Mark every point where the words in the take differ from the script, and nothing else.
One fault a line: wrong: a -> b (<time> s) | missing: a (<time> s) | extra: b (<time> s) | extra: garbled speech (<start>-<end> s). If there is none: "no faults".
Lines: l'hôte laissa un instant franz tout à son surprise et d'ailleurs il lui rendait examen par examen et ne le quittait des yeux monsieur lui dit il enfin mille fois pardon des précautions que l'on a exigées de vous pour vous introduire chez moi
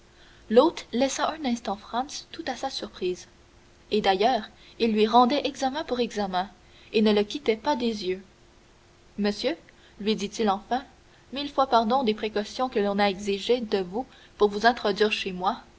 wrong: son -> sa (2.5 s)
wrong: par -> pour (5.8 s)
extra: pas (7.5 s)